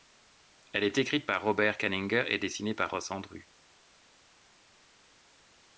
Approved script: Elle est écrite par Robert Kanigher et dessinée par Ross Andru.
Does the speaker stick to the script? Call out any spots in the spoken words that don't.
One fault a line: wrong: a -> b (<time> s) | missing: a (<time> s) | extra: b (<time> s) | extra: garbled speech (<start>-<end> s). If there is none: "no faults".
no faults